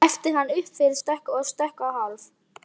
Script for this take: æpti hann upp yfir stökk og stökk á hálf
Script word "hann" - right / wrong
right